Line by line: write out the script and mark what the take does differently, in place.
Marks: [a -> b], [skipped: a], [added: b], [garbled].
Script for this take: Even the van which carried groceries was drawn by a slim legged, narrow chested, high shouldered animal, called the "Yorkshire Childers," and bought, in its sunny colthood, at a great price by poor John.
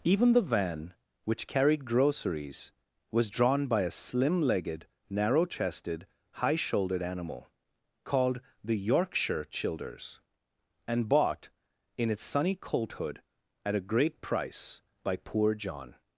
Even the van which carried groceries was drawn by a slim legged, narrow chested, high shouldered animal, called the "Yorkshire Childers," and bought, in its sunny colthood, at a great price by poor John.